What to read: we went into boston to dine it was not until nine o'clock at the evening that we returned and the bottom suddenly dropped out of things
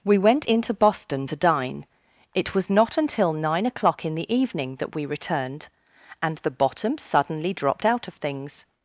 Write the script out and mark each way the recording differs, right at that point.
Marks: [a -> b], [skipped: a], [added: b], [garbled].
we went into boston to dine it was not until nine o'clock [at -> in] the evening that we returned and the bottom suddenly dropped out of things